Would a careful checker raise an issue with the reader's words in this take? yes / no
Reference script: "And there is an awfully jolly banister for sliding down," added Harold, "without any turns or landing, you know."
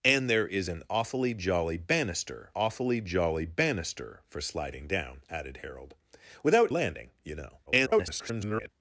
yes